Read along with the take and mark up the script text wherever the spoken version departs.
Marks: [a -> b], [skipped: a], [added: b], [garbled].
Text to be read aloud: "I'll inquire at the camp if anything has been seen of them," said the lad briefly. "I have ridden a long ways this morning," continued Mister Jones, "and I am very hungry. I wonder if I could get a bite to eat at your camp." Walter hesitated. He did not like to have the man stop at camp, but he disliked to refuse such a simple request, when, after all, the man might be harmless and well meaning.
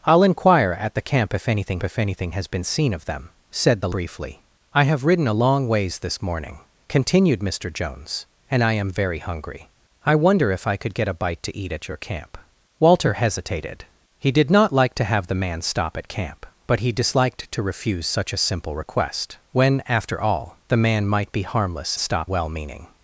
"I'll inquire at the camp if anything [added: if anything] has been seen of them," said the [skipped: lad] briefly. "I have ridden a long ways this morning," continued Mister Jones, "and I am very hungry. I wonder if I could get a bite to eat at your camp." Walter hesitated. He did not like to have the man stop at camp, but he disliked to refuse such a simple request, when, after all, the man might be harmless [and -> stop] well meaning.